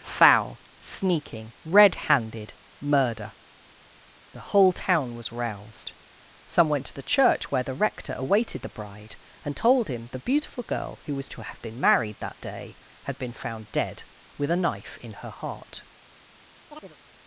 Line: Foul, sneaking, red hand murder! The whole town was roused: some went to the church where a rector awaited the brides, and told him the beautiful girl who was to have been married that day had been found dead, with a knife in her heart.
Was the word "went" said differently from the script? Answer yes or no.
no